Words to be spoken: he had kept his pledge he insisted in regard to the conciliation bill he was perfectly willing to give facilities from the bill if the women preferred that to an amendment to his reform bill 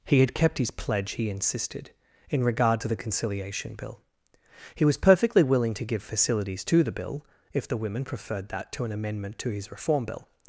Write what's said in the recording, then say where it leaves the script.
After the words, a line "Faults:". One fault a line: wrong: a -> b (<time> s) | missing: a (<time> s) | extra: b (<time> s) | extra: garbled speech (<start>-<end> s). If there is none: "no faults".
he had kept his pledge he insisted in regard to the conciliation bill he was perfectly willing to give facilities to the bill if the women preferred that to an amendment to his reform bill
Faults:
wrong: from -> to (6.7 s)